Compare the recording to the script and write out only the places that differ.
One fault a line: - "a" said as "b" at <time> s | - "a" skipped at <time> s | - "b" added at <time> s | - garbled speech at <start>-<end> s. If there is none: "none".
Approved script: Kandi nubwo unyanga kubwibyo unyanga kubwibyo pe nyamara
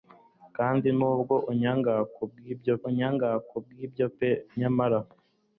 none